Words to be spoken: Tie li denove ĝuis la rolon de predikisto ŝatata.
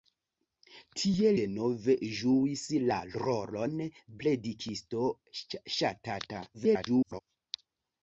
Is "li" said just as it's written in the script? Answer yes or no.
no